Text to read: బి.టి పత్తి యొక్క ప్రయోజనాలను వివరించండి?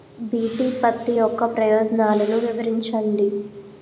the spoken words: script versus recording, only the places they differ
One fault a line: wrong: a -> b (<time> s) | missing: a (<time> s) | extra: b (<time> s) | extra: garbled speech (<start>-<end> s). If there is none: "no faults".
no faults